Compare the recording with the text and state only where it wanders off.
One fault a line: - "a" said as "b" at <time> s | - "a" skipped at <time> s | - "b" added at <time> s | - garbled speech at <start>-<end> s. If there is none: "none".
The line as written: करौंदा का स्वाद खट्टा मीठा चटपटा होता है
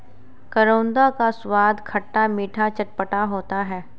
none